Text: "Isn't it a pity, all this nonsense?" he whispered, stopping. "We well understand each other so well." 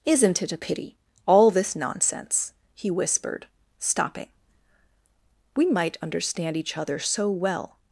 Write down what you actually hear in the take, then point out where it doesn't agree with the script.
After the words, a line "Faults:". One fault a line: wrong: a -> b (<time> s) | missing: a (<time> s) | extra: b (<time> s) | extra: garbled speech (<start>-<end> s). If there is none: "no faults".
"Isn't it a pity, all this nonsense?" he whispered, stopping. "We might understand each other so well."
Faults:
wrong: well -> might (5.7 s)